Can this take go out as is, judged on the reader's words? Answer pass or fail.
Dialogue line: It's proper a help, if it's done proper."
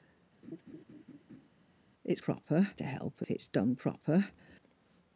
pass